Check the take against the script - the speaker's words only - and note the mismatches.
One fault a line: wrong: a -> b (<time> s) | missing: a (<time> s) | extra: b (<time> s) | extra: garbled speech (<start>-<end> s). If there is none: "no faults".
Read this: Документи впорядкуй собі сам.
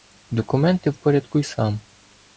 missing: собі (1.4 s)